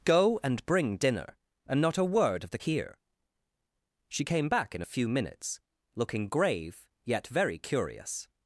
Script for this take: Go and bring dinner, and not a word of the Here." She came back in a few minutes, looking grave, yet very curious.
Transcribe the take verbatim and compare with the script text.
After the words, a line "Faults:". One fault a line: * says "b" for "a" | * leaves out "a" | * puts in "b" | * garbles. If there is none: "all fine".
Go and bring dinner, and not a word of the Here." She came back in a few minutes, looking grave, yet very curious.
Faults:
all fine